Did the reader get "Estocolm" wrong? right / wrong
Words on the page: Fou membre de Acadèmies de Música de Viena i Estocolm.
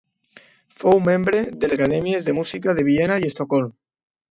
right